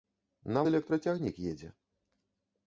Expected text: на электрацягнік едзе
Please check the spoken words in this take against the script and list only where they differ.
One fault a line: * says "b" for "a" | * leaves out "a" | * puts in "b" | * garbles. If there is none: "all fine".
all fine